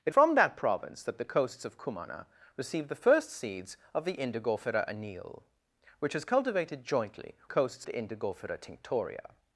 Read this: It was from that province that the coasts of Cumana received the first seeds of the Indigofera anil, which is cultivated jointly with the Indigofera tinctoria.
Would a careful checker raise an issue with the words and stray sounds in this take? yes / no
yes